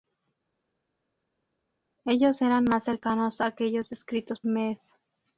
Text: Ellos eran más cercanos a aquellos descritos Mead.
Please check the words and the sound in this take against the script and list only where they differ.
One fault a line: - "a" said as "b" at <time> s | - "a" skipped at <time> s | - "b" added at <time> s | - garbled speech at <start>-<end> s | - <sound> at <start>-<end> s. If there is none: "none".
none